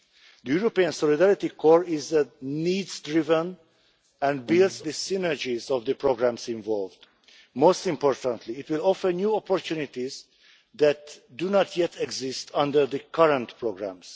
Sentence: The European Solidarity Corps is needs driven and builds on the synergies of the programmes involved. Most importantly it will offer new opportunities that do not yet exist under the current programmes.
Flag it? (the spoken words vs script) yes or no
yes